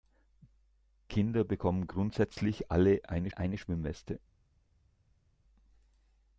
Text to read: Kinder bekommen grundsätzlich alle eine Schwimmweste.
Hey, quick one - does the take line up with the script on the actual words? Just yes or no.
no